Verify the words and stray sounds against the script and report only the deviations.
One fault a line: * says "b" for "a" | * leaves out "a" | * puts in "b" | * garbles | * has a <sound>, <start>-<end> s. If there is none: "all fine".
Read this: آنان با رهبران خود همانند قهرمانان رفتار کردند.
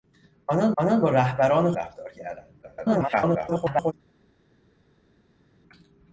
* puts in "آنان"
* leaves out "خود همانند قهرمانان"
* garbles